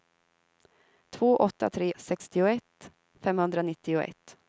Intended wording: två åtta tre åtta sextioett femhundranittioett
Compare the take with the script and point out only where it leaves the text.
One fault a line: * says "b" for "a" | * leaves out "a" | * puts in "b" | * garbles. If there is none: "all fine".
* leaves out "åtta"